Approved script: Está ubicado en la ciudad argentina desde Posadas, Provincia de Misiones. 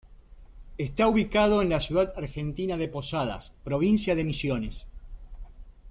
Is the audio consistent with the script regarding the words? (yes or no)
no